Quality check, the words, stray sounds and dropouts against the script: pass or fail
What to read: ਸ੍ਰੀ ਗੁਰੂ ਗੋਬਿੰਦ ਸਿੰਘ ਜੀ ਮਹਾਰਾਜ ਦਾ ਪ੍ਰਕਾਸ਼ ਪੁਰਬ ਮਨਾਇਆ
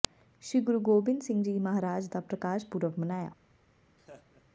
fail